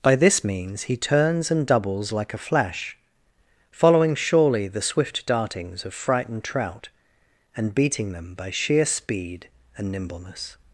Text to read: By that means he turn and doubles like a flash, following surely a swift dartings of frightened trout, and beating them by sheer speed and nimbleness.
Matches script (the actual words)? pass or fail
fail